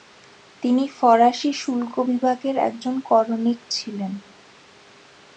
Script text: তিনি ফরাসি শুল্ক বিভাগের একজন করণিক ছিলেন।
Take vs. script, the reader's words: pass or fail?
pass